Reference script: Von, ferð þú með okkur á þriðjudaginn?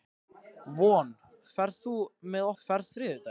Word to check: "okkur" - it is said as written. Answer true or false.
false